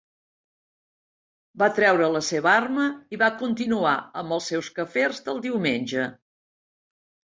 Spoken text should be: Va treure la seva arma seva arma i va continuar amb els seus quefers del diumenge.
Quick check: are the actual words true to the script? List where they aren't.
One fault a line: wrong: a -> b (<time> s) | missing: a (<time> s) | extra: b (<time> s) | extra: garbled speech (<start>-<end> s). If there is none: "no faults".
missing: seva arma (2.9 s)